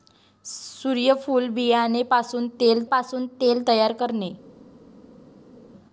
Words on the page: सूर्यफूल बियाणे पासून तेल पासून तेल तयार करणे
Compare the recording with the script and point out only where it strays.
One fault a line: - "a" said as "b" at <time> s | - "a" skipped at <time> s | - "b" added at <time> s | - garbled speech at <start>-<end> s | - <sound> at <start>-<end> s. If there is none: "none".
none